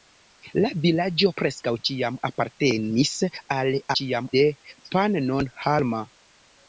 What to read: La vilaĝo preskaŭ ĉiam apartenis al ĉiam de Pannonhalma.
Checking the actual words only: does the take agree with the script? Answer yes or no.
yes